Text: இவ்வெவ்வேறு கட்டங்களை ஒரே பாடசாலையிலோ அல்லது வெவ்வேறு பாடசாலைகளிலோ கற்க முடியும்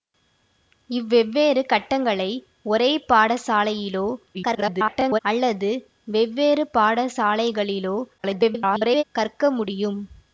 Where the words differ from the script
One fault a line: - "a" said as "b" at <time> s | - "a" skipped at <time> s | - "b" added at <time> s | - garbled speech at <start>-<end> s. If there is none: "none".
- garbled speech at 4.3-5.2 s
- garbled speech at 8.2-9.0 s